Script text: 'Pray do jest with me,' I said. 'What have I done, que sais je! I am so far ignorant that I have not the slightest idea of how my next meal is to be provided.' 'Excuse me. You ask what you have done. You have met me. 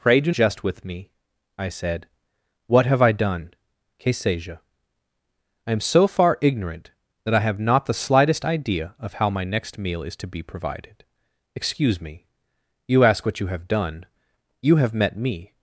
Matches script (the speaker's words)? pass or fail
pass